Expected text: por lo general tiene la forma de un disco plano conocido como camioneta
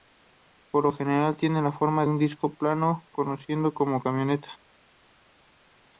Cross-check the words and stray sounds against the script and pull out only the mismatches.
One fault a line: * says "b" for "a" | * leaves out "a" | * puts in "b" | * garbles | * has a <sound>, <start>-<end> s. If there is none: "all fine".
* leaves out "de"